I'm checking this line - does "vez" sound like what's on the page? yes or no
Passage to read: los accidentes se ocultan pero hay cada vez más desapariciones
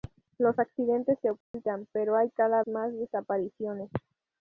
no